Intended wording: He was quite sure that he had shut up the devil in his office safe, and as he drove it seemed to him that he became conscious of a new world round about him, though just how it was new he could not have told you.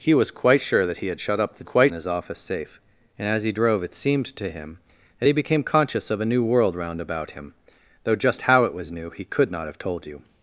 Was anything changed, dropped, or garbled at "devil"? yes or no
yes